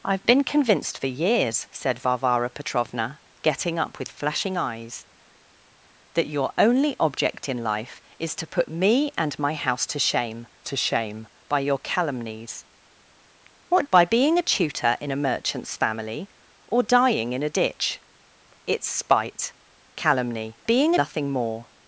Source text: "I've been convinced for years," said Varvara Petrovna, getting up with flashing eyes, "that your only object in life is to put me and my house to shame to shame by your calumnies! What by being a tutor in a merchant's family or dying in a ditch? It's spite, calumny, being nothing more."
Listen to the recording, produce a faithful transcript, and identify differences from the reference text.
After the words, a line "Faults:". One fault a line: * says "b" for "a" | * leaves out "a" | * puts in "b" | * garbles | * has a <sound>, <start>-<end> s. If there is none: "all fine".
"I've been convinced for years," said Varvara Petrovna, getting up with flashing eyes, "that your only object in life is to put me and my house to shame to shame by your calumnies! What by being a tutor in a merchant's family or dying in a ditch? It's spite, calumny, being nothing more."
Faults:
all fine